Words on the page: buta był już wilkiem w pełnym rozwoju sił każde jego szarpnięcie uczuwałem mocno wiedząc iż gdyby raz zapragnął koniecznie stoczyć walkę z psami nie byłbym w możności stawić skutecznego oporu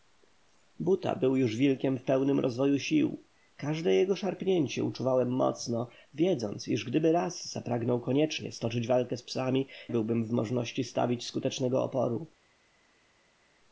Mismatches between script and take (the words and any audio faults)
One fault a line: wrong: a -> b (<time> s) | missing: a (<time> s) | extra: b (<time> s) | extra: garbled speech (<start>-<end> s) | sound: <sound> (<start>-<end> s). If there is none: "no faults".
missing: nie (9.7 s)